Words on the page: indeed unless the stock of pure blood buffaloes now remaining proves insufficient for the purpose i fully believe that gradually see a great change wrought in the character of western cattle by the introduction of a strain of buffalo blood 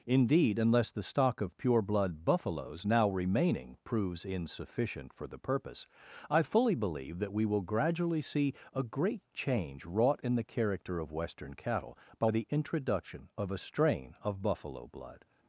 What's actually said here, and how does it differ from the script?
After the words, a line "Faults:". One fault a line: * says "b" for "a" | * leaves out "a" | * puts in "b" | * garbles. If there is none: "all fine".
indeed unless the stock of pure blood buffaloes now remaining proves insufficient for the purpose i fully believe that we will gradually see a great change wrought in the character of western cattle by the introduction of a strain of buffalo blood
Faults:
* puts in "we will"